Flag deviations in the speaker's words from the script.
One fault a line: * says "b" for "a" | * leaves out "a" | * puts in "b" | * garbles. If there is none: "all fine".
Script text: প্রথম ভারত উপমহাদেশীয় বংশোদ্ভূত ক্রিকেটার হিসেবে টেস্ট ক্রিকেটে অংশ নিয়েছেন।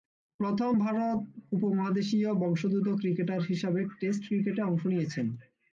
all fine